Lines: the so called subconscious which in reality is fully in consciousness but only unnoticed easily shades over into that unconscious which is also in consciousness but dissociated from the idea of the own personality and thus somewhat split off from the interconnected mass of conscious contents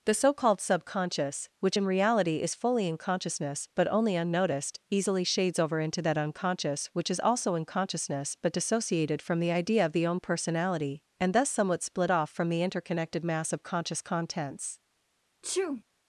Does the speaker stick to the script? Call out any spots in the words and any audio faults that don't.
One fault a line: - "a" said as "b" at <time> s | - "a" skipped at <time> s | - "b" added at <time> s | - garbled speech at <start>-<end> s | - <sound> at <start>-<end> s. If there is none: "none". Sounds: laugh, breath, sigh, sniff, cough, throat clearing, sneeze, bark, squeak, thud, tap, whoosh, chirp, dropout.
- sneeze at 15.4-15.8 s